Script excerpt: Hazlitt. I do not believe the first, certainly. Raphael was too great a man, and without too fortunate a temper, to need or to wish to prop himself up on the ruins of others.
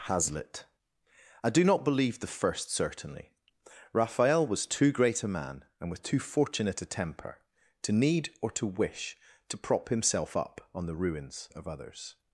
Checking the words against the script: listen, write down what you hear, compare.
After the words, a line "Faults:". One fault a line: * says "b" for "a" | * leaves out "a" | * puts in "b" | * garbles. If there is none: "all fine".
Hazlitt. I do not believe the first, certainly. Raphael was too great a man, and with too fortunate a temper, to need or to wish to prop himself up on the ruins of others.
Faults:
* says "with" for "without"